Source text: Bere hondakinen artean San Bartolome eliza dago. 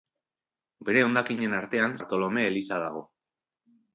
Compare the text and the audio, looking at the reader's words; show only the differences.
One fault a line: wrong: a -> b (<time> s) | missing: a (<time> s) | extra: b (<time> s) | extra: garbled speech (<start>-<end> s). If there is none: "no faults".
missing: San (1.9 s)